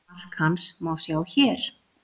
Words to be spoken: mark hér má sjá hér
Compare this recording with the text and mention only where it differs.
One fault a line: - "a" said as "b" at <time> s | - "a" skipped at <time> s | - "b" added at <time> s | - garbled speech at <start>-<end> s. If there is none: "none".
- "hér" said as "hans" at 0.4 s